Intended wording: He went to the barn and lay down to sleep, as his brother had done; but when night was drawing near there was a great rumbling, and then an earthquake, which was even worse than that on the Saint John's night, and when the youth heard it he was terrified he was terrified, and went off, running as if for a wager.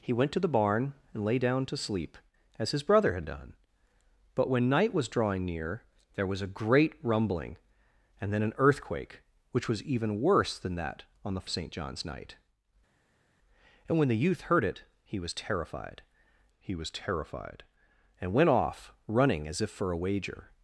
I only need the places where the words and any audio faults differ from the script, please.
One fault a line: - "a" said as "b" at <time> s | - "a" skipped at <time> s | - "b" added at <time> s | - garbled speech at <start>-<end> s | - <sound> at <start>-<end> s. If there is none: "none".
none